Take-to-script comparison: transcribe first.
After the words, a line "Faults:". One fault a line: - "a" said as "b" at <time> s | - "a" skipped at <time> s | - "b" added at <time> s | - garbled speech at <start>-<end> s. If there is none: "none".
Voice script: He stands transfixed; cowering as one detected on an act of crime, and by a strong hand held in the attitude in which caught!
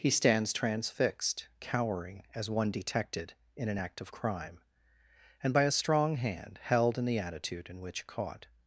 He stands transfixed; cowering as one detected in an act of crime, and by a strong hand held in the attitude in which caught!
Faults:
- "on" said as "in" at 3.5 s